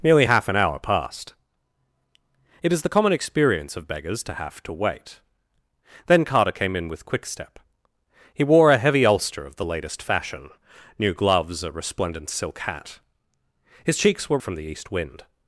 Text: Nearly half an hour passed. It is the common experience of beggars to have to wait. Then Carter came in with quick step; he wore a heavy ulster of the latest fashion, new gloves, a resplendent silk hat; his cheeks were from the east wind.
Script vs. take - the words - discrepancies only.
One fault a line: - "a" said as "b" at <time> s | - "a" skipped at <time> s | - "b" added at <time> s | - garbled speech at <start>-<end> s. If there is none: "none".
none